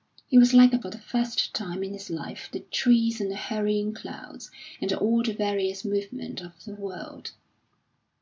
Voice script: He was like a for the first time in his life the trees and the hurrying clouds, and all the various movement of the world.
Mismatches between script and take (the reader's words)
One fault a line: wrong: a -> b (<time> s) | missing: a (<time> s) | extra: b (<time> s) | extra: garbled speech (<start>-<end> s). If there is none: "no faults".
no faults